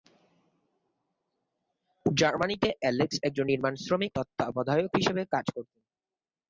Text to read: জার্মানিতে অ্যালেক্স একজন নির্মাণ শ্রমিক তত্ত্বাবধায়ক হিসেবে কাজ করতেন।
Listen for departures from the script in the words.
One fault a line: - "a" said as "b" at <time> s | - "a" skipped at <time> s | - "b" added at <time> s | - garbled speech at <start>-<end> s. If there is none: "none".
none